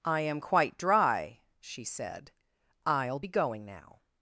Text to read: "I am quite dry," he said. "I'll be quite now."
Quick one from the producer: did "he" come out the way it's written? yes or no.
no